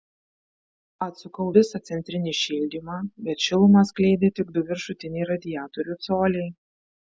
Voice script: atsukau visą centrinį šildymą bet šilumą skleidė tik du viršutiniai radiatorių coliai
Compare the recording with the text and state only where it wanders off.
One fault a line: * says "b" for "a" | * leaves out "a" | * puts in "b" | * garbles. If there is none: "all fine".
all fine